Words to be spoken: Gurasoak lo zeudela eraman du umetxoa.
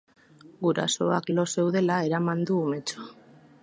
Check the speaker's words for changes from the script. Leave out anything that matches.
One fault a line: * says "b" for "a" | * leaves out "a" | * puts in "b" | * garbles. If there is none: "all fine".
all fine